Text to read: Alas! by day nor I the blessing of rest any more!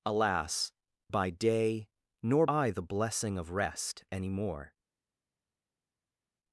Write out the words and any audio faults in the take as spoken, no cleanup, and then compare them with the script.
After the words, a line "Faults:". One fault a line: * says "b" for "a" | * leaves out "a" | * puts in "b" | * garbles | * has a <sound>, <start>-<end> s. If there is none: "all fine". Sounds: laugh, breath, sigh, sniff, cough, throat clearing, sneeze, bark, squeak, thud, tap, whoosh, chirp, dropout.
Alas! by day nor I the blessing of rest any more!
Faults:
all fine